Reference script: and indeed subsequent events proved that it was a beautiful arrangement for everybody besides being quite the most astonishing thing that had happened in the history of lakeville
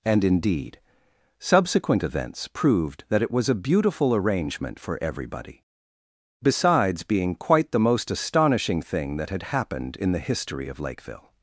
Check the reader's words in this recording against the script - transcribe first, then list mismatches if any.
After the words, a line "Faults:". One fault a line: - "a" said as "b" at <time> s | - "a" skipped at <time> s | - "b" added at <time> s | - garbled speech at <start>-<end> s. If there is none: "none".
and indeed subsequent events proved that it was a beautiful arrangement for everybody besides being quite the most astonishing thing that had happened in the history of lakeville
Faults:
none